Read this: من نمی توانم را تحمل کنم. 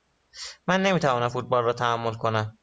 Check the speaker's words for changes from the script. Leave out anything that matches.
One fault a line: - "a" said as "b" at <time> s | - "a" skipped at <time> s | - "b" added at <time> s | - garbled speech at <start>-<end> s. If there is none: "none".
- "فوتبال" added at 1.3 s